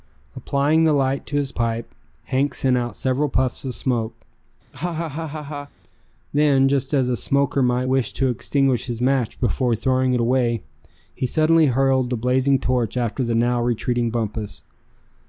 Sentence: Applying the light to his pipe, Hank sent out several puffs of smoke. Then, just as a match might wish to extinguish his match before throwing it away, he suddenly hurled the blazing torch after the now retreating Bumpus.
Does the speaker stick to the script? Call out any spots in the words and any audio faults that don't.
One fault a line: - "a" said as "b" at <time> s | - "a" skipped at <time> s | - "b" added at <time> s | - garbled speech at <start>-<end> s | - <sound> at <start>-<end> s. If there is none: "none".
- laugh at 4.7-5.7 s
- "match" said as "smoker" at 7.2 s